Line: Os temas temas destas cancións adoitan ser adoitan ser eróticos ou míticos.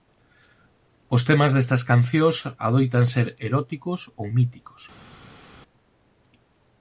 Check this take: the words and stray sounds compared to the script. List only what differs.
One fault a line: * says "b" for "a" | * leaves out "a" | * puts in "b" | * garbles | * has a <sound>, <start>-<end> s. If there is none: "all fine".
* leaves out "temas"
* leaves out "adoitan ser"